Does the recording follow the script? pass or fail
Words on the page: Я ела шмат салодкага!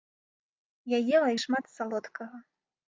pass